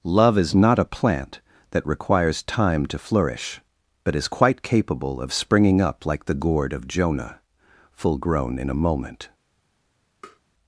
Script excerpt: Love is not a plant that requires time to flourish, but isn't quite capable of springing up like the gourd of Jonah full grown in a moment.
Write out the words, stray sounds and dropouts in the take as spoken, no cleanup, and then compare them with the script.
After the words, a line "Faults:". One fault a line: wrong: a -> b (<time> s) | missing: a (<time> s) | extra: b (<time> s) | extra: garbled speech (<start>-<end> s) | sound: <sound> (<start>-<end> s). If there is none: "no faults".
Love is not a plant that requires time to flourish, but is quite capable of springing up like the gourd of Jonah full grown in a moment.
Faults:
wrong: isn't -> is (4.2 s)
sound: tap (10.2-10.4 s)